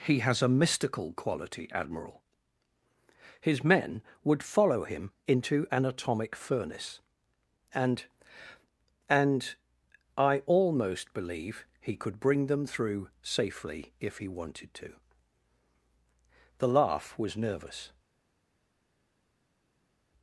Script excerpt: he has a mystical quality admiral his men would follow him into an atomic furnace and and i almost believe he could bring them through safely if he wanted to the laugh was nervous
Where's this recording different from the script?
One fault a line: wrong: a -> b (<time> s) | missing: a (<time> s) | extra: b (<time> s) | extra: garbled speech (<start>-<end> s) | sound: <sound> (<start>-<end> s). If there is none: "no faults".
no faults